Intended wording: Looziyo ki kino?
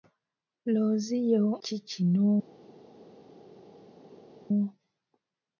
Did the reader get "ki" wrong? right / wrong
right